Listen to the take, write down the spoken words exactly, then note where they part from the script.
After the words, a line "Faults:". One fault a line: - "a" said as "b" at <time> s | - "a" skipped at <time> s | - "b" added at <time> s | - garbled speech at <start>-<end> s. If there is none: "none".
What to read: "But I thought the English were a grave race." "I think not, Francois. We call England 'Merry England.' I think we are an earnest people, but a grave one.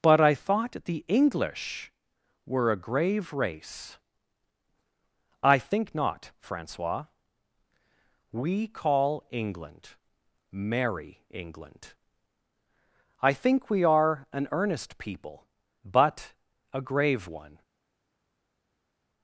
"But I thought the English were a grave race." "I think not, Francois. We call England 'Merry England.' I think we are an earnest people, but a grave one.
Faults:
none